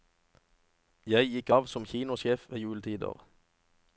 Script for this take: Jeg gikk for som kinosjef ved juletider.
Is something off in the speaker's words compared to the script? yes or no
yes